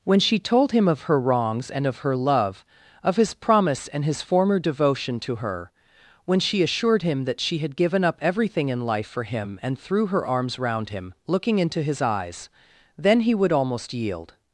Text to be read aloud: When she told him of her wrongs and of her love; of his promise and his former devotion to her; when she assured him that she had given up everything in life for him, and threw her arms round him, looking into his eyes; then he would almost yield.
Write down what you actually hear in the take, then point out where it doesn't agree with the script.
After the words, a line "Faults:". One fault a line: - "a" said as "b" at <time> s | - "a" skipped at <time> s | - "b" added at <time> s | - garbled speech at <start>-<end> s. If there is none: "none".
When she told him of her wrongs and of her love; of his promise and his former devotion to her; when she assured him that she had given up everything in life for him, and threw her arms round him, looking into his eyes; then he would almost yield.
Faults:
none